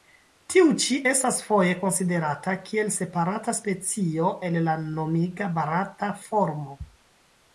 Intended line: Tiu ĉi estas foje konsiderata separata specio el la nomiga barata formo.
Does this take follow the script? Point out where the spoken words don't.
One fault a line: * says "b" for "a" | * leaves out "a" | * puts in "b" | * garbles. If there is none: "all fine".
* puts in "kiel"